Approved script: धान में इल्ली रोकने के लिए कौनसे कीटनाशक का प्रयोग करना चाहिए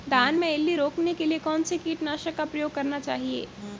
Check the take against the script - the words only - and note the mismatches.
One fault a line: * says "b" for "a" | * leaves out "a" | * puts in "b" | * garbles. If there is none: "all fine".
all fine